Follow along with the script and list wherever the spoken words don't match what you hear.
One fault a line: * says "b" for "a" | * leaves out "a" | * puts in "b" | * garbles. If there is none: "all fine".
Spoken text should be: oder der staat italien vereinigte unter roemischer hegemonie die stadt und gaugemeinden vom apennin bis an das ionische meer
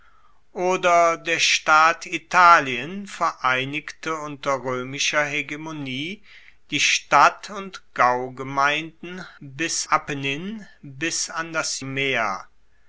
* says "bis" for "vom"
* leaves out "ionische"